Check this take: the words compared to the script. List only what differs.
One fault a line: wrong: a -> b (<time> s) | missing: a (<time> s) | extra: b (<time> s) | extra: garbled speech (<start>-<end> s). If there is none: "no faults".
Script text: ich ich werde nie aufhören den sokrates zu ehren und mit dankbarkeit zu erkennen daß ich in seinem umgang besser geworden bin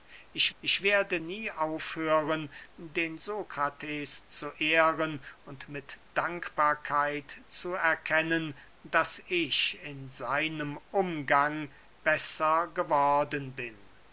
no faults